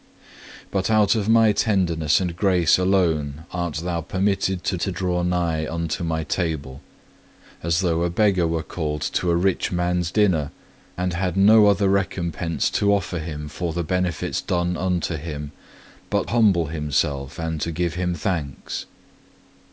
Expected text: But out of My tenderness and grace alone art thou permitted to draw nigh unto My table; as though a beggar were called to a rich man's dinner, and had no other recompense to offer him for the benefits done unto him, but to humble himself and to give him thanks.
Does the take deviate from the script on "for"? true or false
false